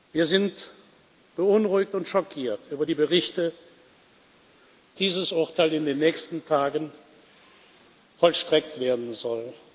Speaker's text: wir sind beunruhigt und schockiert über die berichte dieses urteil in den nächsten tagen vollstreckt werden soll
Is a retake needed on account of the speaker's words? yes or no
no